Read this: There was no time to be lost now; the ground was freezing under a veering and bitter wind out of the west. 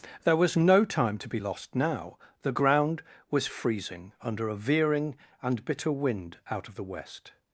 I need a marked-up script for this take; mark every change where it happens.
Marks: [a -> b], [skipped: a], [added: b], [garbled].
There was no time to be lost now; the ground was freezing under a veering and bitter wind out of the west.